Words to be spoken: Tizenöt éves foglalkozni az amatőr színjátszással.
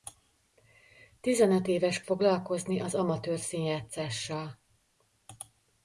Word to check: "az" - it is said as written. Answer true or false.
true